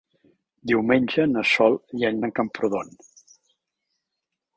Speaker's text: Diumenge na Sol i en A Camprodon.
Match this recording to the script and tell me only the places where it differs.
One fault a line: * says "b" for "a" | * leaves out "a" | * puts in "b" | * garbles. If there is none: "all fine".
all fine